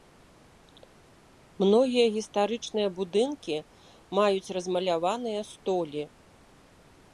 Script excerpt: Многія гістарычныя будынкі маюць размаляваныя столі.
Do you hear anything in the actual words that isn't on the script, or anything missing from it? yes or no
no